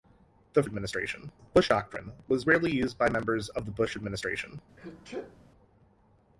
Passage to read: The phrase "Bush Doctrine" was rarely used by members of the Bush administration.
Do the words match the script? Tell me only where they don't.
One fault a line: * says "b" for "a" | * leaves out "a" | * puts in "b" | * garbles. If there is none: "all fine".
* says "administration" for "phrase"